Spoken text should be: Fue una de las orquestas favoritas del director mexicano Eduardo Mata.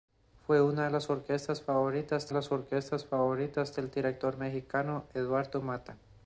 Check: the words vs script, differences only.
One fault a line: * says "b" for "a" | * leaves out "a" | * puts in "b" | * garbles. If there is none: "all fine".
* puts in "las orquestas favoritas"